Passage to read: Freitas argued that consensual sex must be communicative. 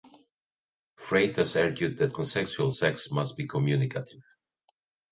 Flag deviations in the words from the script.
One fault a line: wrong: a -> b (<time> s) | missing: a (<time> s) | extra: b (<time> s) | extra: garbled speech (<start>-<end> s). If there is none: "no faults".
no faults